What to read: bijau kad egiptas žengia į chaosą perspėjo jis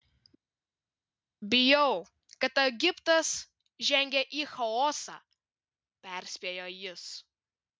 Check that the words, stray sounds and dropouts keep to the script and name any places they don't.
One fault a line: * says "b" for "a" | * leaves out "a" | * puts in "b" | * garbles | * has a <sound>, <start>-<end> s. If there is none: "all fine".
all fine